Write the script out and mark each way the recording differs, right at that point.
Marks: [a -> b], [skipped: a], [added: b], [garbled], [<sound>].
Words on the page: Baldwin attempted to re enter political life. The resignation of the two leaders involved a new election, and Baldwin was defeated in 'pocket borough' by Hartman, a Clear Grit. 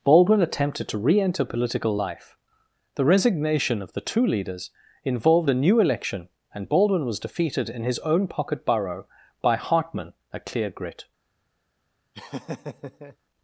Baldwin attempted to re enter political life. The resignation of the two leaders involved a new election, and Baldwin was defeated in [added: his own] 'pocket borough' by Hartman, a Clear Grit. [laugh]